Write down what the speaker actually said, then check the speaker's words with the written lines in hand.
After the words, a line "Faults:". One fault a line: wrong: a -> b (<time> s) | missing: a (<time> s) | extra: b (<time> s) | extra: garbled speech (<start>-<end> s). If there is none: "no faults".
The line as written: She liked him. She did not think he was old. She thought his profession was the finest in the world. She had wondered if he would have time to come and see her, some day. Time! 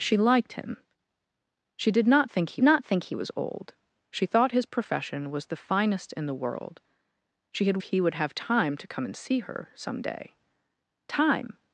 She liked him. She did not think he not think he was old. She thought his profession was the finest in the world. She had he would have time to come and see her, some day. Time!
Faults:
extra: not think he (2.6 s)
missing: wondered if (7.8 s)